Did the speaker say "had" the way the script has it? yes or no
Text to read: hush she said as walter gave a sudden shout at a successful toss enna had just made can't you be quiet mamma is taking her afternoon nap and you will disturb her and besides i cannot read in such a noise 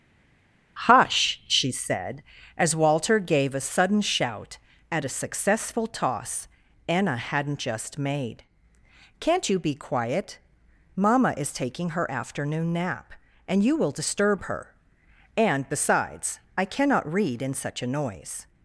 no